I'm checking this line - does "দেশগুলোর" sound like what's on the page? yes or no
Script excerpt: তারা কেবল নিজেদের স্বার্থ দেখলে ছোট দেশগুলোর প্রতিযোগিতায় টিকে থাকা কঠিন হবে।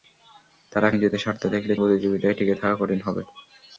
no